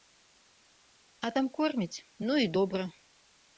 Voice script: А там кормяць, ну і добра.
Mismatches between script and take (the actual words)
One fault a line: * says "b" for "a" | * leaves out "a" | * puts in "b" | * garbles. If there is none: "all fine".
all fine